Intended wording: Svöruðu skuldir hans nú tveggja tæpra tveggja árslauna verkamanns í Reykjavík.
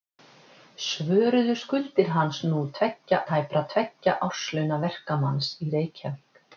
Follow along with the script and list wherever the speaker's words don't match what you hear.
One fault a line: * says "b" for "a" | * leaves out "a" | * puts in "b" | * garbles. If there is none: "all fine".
all fine